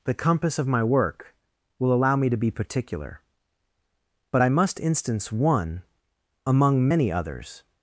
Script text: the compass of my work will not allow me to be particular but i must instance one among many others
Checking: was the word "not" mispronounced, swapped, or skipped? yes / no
yes